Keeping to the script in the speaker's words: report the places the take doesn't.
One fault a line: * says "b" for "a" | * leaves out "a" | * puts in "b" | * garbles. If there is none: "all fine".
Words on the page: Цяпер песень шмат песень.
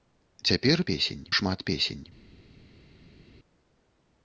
all fine